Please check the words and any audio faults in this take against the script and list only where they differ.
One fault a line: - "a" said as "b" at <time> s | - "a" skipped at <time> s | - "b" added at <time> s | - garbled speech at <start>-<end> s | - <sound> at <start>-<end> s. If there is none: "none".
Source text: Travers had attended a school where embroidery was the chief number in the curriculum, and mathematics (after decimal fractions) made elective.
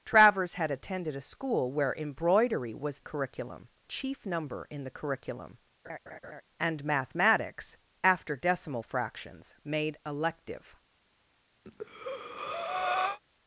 - "the" said as "curriculum" at 3.0 s
- laugh at 5.8-6.4 s
- breath at 11.6-13.2 s